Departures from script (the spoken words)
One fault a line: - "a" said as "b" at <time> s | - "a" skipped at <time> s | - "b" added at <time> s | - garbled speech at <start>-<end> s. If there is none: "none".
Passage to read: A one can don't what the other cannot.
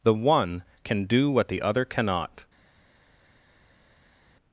- "A" said as "The" at 0.0 s
- "don't" said as "do" at 1.0 s